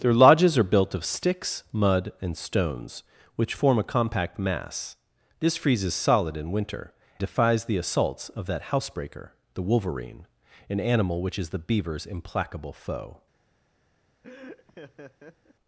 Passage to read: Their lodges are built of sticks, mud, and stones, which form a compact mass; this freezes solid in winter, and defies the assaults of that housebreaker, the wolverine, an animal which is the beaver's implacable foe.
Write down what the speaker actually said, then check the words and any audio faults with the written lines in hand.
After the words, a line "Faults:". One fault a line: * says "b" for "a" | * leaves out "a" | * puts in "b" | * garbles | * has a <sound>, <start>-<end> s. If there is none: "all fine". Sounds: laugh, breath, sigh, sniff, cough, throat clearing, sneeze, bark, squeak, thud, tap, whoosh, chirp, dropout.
Their lodges are built of sticks, mud, and stones, which form a compact mass; this freezes solid in winter, defies the assaults of that housebreaker, the wolverine, an animal which is the beaver's implacable foe.
Faults:
* leaves out "and"
* has a laugh, 14.2-15.5 s